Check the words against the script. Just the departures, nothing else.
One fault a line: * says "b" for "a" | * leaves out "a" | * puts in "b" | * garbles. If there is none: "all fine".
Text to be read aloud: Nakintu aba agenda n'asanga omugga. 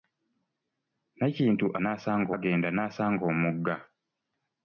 * says "n'asanga" for "aba"